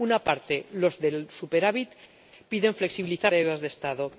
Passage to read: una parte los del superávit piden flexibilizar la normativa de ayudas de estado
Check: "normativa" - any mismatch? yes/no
yes